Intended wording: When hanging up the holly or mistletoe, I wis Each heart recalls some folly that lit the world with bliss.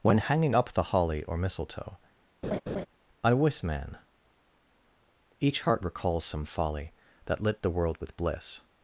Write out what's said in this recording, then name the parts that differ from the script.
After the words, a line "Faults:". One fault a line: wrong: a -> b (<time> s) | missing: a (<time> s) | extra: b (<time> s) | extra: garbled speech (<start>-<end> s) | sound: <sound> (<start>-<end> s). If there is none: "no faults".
When hanging up the holly or mistletoe, I wis man Each heart recalls some folly that lit the world with bliss.
Faults:
sound: laugh (2.4-2.9 s)
extra: man (3.6 s)